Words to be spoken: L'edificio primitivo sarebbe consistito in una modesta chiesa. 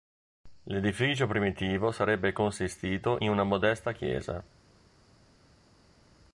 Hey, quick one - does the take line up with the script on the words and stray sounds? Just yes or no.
yes